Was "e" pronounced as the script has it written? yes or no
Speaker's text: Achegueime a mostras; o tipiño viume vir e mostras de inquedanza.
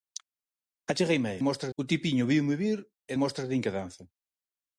yes